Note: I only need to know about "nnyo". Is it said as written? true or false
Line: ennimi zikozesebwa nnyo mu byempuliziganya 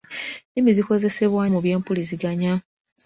false